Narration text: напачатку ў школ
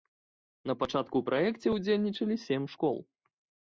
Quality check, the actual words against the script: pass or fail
fail